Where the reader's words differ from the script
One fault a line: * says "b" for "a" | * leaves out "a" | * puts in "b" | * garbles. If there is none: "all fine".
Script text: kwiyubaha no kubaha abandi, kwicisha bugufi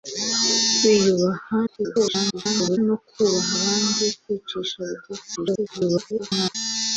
* garbles
* garbles